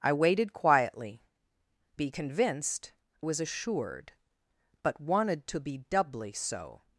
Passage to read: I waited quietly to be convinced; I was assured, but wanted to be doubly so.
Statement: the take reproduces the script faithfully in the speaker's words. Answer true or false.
false